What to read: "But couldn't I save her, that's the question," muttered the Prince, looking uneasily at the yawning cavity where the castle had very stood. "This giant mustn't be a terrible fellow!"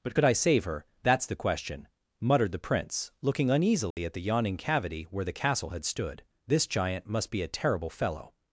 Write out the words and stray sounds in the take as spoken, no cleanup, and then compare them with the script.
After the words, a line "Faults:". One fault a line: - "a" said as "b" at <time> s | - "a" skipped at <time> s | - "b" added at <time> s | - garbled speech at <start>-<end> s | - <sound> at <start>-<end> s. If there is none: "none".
"But could I save her, that's the question," muttered the Prince, looking uneasily at the yawning cavity where the castle had stood. "This giant must be a terrible fellow!"
Faults:
- "couldn't" said as "could" at 0.1 s
- dropout at 3.9-4.0 s
- "very" skipped at 5.8 s
- "mustn't" said as "must" at 7.1 s